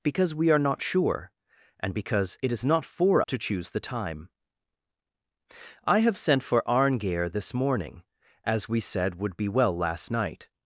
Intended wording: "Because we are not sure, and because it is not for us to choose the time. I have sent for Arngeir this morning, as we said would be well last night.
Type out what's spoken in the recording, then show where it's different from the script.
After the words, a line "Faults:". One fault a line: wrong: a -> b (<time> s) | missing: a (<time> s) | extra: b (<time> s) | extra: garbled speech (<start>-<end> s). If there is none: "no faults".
"Because we are not sure, and because it is not for to choose the time. I have sent for Arngeir this morning, as we said would be well last night.
Faults:
missing: us (3.2 s)